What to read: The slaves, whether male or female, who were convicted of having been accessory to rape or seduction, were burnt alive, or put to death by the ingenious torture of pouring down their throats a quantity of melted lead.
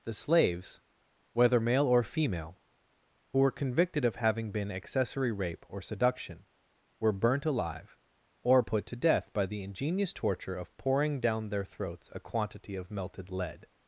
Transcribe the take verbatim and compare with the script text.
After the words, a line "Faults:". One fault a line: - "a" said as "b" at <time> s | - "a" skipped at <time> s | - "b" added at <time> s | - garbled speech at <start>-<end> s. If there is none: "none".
The slaves, whether male or female, who were convicted of having been accessory rape or seduction, were burnt alive, or put to death by the ingenious torture of pouring down their throats a quantity of melted lead.
Faults:
- "to" skipped at 5.3 s